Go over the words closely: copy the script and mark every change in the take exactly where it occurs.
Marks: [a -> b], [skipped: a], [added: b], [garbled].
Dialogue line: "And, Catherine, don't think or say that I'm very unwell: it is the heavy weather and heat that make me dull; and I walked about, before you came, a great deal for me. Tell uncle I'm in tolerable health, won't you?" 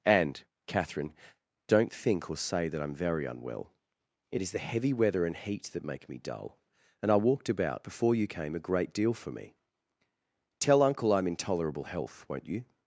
"And, Catherine, don't think or say that I'm very unwell: it is the heavy weather and heat that make me dull; and I walked about, before you came, a great deal for me. Tell uncle I'm in tolerable health, won't you?"